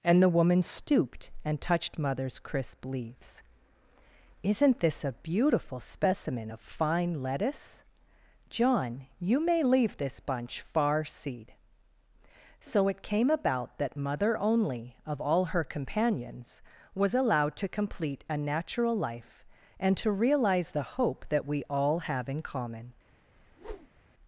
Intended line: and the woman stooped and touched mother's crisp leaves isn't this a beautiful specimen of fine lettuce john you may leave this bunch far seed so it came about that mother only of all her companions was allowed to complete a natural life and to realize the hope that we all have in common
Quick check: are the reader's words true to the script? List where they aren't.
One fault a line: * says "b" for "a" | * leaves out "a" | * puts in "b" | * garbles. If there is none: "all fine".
all fine